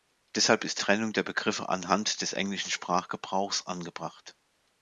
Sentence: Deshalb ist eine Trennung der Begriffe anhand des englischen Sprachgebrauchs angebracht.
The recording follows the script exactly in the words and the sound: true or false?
false